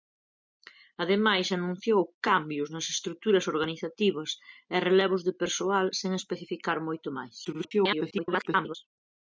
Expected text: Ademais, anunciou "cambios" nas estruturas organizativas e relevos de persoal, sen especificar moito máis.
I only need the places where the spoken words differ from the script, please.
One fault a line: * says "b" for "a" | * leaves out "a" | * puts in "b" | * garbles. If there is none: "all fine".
* garbles